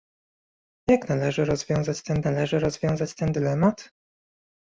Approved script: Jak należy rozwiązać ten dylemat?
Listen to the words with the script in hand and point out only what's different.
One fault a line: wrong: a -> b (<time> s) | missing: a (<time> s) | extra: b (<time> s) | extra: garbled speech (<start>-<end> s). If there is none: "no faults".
extra: należy rozwiązać ten (2.2 s)